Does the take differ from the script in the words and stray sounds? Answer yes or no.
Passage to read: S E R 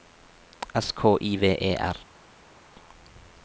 yes